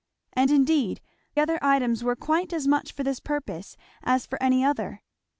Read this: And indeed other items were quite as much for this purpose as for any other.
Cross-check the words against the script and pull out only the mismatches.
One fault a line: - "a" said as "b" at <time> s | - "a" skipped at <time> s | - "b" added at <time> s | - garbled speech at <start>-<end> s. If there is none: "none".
none